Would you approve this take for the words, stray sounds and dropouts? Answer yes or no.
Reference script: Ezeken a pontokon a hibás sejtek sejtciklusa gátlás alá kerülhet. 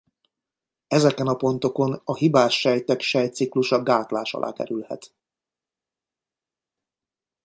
yes